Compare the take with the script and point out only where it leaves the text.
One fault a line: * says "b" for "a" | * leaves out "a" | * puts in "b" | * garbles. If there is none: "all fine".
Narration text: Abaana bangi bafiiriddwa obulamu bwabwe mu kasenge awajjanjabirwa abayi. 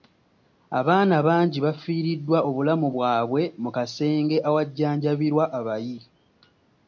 all fine